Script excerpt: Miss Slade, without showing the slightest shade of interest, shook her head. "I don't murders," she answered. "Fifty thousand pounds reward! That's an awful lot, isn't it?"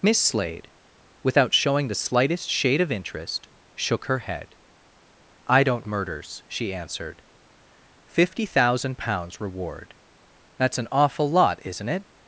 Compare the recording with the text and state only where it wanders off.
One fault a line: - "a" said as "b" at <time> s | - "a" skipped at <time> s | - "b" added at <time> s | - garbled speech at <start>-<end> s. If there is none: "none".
none